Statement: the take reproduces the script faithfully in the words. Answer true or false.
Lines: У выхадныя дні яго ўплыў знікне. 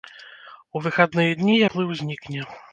false